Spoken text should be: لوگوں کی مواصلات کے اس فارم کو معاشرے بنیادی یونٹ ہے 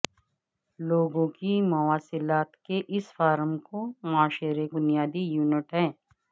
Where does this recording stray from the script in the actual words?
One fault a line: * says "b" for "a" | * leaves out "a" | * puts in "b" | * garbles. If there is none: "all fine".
all fine